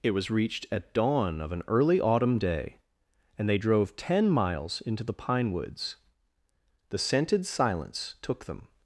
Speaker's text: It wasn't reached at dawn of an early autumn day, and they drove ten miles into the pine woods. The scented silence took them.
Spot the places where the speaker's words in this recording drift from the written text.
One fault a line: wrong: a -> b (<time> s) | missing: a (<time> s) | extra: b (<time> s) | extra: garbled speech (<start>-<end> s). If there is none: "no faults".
wrong: wasn't -> was (0.1 s)